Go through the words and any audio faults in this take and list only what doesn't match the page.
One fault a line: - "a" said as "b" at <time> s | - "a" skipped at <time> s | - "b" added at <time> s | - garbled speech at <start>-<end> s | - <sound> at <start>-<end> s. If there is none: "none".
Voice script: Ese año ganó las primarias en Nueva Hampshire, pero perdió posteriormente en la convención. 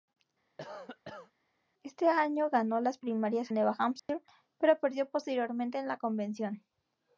- cough at 0.6-1.3 s
- "en" skipped at 3.5 s
- dropout at 4.0-4.1 s